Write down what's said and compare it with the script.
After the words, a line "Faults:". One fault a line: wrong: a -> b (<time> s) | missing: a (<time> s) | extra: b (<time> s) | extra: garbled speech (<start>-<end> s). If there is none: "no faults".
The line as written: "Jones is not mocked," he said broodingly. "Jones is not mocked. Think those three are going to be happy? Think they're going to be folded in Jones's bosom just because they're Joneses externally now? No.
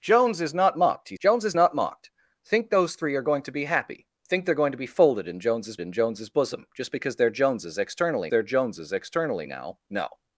"Jones is not mocked," he. "Jones is not mocked. Think those three are going to be happy? Think they're going to be folded in Jones's in Jones's bosom just because they're Joneses externally they're Joneses externally now? No.
Faults:
missing: said broodingly (1.2 s)
extra: in Jones's (5.8 s)
extra: they're Joneses externally (8.3 s)